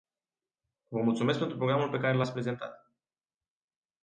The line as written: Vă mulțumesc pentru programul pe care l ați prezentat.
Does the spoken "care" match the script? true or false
true